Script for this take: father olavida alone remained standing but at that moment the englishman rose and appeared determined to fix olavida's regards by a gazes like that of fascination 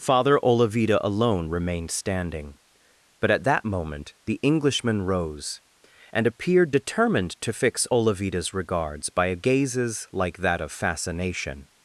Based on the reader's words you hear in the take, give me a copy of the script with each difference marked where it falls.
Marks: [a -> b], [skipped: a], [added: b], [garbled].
father olavida alone remained standing but at that moment the englishman rose and appeared determined to fix olavida's regards by a gazes like that of fascination